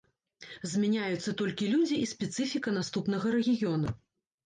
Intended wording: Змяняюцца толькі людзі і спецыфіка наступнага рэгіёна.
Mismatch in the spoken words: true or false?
false